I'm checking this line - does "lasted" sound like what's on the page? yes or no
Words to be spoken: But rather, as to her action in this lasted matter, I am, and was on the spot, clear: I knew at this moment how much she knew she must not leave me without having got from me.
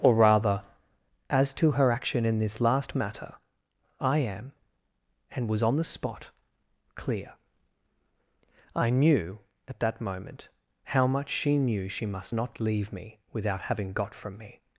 no